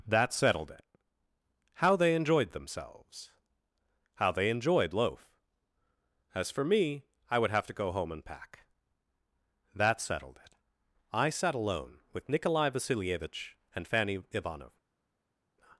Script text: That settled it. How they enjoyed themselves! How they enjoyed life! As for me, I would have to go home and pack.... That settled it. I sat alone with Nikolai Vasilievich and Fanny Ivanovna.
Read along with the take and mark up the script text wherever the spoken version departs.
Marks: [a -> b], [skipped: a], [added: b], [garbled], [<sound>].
That settled it. How they enjoyed themselves! How they enjoyed [life! -> loaf] As for me, I would have to go home and pack.... That settled it. I sat alone with Nikolai Vasilievich and Fanny Ivanovna.